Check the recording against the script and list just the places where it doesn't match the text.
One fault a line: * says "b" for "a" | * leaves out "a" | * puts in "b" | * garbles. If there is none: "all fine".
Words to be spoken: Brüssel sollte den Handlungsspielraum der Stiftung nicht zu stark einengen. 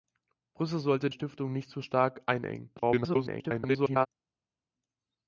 * leaves out "den Handlungsspielraum der"
* garbles